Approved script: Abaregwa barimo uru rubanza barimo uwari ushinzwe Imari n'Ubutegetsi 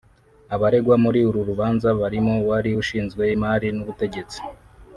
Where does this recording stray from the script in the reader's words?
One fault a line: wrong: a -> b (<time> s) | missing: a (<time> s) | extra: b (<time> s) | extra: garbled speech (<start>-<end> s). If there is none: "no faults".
wrong: barimo -> muri (1.0 s)